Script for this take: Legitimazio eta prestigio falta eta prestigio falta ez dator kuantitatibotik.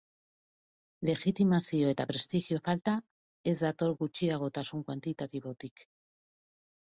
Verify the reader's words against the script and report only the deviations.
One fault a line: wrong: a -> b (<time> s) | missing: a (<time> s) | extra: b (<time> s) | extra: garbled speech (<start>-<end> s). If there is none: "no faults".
missing: eta prestigio falta (2.9 s)
extra: gutxiagotasun (4.0 s)